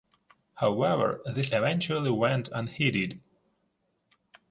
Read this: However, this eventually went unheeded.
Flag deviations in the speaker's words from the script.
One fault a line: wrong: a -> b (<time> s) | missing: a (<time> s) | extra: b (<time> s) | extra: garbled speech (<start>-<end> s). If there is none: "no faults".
no faults